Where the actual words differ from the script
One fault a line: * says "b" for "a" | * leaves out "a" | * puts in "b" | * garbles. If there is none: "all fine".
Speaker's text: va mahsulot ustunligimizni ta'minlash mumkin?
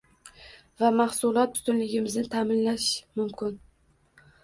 all fine